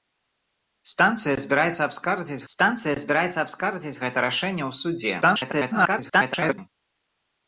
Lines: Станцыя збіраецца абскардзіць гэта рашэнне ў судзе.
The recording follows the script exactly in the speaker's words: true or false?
false